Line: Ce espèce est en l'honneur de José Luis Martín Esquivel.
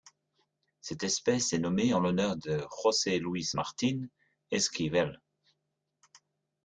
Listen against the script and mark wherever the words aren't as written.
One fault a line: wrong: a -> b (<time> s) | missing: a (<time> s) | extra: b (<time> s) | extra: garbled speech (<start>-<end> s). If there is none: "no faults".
wrong: Ce -> Cette (0.8 s)
extra: nommée (1.6 s)